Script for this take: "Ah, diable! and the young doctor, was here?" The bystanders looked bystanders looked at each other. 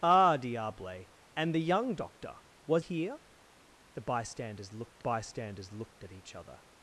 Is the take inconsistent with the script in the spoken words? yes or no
no